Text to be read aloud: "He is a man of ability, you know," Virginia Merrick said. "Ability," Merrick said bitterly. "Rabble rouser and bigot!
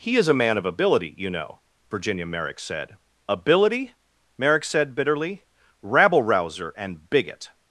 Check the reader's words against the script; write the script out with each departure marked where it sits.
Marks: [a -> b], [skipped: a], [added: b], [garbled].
"He is a man of ability, you know," Virginia Merrick said. "Ability," Merrick said bitterly. "Rabble rouser and bigot!